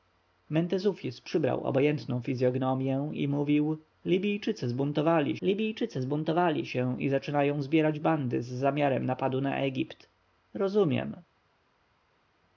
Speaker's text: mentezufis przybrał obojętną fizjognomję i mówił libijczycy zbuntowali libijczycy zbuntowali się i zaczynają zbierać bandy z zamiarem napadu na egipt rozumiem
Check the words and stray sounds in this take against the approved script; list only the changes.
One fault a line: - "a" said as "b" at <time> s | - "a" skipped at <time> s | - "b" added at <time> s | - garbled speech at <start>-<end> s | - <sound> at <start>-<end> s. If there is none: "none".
none